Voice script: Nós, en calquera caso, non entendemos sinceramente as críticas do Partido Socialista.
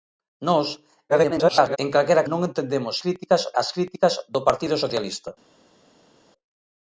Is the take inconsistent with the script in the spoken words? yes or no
yes